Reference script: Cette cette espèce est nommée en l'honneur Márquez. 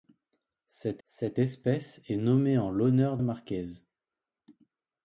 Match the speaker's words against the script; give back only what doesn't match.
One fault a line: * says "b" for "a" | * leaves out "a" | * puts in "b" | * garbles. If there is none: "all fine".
all fine